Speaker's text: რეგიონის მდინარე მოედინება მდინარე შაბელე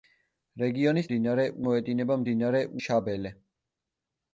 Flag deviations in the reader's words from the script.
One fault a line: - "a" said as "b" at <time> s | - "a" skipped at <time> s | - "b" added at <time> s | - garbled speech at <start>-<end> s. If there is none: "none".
none